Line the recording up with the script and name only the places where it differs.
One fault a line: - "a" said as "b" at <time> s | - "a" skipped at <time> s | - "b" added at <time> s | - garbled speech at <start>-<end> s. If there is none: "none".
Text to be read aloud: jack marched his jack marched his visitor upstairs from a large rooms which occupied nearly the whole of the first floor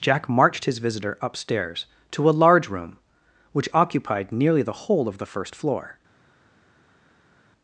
- "jack marched his" skipped at 0.8 s
- "from" said as "to" at 2.1 s
- "rooms" said as "room" at 2.7 s